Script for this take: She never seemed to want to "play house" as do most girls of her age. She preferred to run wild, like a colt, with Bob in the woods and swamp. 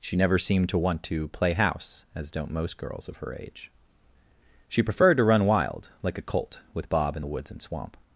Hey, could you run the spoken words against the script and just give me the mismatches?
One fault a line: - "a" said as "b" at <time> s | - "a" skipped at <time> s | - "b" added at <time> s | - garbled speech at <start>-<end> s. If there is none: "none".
- "do" said as "don't" at 2.3 s